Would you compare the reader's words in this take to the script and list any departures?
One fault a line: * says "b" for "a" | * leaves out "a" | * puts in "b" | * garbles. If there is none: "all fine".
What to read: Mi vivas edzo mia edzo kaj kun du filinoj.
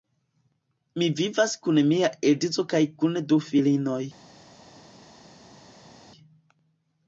* says "kun" for "edzo"